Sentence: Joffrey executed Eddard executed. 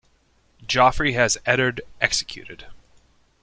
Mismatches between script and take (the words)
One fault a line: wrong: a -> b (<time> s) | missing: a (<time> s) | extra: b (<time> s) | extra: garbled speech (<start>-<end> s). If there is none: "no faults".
wrong: executed -> has (1.1 s)